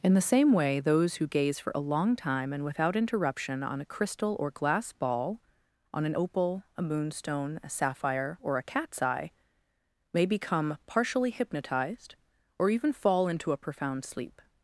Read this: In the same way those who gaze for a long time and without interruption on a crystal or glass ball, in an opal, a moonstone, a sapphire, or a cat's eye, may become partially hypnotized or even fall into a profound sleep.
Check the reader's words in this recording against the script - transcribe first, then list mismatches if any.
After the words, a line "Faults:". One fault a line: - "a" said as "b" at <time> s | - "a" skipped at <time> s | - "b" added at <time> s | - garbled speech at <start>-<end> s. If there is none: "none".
In the same way those who gaze for a long time and without interruption on a crystal or glass ball, on an opal, a moonstone, a sapphire, or a cat's eye, may become partially hypnotized or even fall into a profound sleep.
Faults:
- "in" said as "on" at 5.9 s